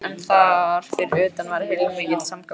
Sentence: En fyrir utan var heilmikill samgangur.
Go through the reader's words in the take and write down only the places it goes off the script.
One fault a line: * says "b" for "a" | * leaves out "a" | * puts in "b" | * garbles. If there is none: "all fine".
* puts in "þar"